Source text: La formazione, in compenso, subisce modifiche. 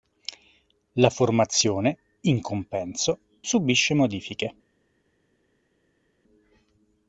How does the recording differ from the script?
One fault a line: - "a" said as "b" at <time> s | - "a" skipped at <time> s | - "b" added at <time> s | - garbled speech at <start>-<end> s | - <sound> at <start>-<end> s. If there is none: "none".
none